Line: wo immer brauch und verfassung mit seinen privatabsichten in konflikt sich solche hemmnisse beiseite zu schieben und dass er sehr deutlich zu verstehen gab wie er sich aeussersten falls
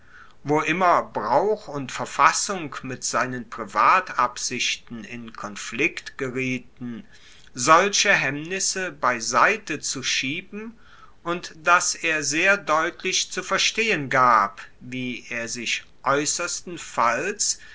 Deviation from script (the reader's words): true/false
true